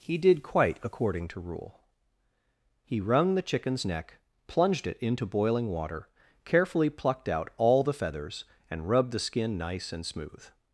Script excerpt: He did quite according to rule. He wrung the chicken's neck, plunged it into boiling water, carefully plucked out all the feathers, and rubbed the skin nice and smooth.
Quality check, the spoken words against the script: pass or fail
pass